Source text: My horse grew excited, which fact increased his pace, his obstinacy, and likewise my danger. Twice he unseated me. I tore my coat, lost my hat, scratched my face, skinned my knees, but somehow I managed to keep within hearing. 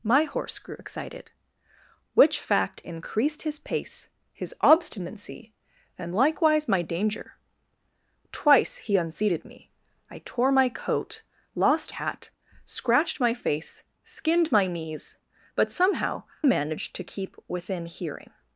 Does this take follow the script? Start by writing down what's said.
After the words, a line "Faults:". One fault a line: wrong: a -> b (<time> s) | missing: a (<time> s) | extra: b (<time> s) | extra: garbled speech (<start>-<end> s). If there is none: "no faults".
My horse grew excited, which fact increased his pace, his obstinacy, and likewise my danger. Twice he unseated me. I tore my coat, lost hat, scratched my face, skinned my knees, but somehow managed to keep within hearing.
Faults:
missing: my (11.9 s)
missing: I (16.2 s)